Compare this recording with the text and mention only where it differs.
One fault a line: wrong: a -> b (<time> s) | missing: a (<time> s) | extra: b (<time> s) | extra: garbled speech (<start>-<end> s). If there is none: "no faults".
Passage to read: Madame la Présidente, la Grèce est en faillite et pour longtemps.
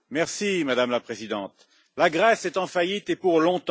no faults